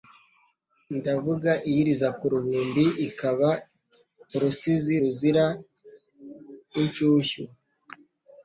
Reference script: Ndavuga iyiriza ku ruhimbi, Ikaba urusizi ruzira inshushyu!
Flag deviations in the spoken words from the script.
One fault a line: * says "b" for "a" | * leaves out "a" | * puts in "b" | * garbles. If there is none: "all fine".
all fine